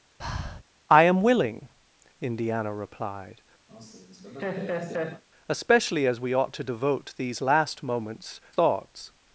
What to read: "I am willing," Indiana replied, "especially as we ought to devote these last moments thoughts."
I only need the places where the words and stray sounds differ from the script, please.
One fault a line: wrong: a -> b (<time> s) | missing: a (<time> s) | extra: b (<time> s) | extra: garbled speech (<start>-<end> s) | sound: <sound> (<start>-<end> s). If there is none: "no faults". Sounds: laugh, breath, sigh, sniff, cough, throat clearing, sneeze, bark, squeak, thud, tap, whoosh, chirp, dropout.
sound: breath (0.2-0.6 s)
sound: laugh (3.7-5.2 s)